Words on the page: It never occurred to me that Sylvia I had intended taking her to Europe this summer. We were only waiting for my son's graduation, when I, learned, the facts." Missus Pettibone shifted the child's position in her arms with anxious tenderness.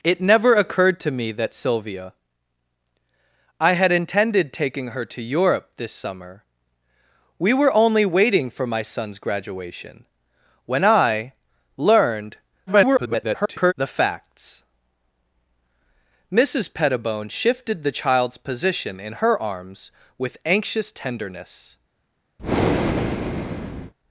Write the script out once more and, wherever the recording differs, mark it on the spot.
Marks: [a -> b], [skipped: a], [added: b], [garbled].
It never occurred to me that Sylvia I had intended taking her to Europe this summer. We were only waiting for my son's graduation, when I, learned, [garbled] the facts." Missus Pettibone shifted the child's position in her arms with anxious tenderness.